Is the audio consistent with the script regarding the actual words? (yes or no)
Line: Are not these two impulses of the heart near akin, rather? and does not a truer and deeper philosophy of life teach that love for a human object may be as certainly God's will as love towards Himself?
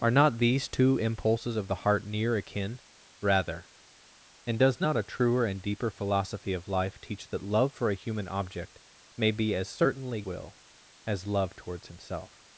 no